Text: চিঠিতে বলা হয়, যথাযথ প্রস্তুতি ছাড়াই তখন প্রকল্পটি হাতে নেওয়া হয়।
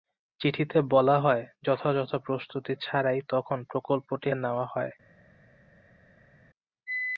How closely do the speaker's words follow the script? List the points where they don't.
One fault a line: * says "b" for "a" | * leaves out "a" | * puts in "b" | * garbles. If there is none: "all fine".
* leaves out "হাতে"